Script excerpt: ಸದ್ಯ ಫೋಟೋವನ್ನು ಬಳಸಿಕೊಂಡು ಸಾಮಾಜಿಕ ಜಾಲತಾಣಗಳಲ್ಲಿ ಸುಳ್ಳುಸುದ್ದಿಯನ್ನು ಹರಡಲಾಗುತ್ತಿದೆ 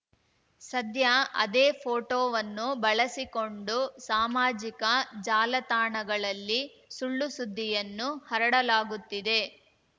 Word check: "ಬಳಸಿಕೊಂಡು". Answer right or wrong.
right